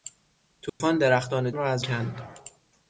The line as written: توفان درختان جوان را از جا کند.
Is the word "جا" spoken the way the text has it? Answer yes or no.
no